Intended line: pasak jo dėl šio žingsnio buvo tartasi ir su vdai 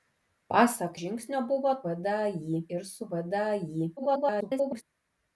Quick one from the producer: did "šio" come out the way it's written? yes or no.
no